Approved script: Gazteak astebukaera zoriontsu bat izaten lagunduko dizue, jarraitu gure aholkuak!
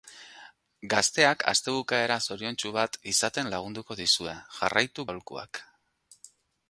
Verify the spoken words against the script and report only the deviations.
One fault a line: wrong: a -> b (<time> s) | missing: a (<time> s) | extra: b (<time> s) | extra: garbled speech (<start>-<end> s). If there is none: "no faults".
missing: gure (5.1 s)